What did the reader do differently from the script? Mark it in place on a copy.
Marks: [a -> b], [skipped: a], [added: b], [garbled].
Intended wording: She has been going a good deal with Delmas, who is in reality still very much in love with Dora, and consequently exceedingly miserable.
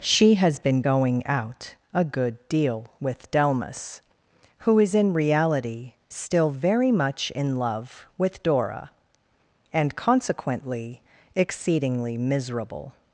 She has been going [added: out] a good deal with Delmas, who is in reality still very much in love with Dora, and consequently exceedingly miserable.